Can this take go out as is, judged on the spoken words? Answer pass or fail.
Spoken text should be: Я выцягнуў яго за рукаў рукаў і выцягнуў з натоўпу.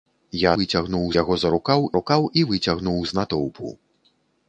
pass